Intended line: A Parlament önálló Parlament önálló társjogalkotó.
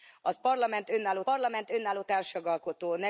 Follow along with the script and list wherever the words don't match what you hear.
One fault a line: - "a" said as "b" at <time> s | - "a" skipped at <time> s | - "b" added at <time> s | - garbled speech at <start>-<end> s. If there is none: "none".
none